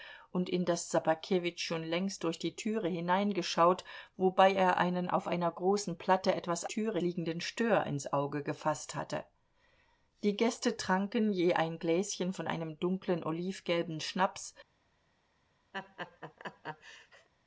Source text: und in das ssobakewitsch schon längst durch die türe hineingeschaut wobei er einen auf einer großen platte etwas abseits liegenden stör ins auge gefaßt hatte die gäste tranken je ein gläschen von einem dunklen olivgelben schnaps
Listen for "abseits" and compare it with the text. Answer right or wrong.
wrong